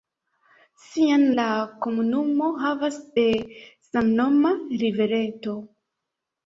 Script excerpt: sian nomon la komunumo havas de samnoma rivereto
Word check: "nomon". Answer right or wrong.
wrong